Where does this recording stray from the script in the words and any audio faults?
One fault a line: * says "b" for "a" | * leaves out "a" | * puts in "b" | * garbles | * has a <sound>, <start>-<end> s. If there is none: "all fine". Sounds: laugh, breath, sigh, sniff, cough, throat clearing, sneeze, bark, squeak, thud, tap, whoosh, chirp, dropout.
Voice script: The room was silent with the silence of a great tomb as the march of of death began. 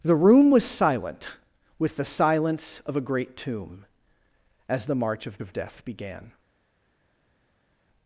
all fine